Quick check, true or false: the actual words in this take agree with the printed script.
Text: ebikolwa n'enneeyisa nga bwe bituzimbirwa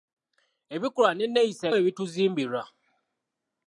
false